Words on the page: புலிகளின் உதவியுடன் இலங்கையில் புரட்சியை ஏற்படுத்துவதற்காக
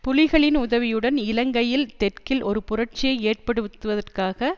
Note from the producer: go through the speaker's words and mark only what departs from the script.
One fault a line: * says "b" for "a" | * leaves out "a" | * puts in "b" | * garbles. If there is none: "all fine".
* puts in "தெற்கில் ஒரு"